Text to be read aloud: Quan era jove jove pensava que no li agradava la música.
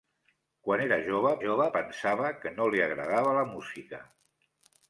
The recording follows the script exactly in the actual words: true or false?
true